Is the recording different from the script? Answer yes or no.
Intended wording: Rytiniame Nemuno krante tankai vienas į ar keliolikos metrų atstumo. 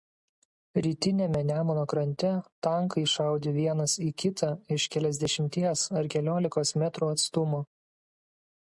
yes